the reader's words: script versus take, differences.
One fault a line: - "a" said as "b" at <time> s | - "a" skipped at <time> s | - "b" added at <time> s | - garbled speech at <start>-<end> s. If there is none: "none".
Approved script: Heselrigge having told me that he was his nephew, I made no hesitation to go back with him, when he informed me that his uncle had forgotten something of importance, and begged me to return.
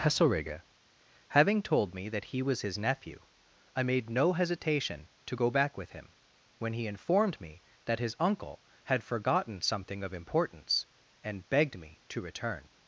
none